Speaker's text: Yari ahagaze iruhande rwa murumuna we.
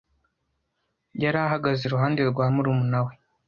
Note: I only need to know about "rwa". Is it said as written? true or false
true